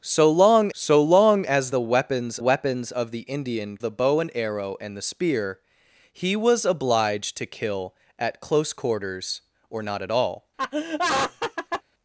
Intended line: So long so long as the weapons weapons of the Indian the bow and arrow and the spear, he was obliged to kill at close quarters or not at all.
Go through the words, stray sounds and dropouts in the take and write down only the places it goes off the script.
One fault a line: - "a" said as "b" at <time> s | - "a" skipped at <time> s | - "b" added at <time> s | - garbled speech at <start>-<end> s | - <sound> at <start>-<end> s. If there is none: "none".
- laugh at 10.6-11.8 s